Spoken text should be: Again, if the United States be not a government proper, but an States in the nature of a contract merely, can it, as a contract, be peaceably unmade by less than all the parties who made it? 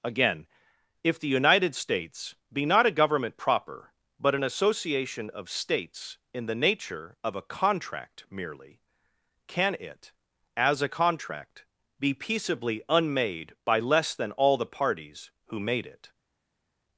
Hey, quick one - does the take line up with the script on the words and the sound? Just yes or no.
no